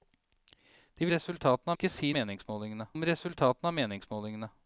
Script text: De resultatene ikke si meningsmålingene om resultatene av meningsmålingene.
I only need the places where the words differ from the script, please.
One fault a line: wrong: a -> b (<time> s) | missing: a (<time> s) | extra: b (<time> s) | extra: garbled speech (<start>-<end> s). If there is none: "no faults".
no faults